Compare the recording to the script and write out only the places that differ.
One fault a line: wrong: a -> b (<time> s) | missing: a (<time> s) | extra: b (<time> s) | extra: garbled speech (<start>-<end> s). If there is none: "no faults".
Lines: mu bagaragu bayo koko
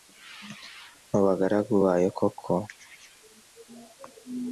no faults